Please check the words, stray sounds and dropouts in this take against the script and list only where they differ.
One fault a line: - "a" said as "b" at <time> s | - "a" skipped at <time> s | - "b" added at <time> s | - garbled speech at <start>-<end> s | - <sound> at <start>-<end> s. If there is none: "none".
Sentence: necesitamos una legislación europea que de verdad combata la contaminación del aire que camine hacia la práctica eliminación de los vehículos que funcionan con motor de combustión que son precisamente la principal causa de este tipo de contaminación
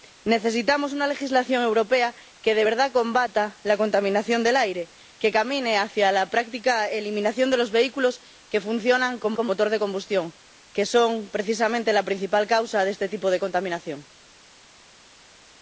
- "con" added at 9.3 s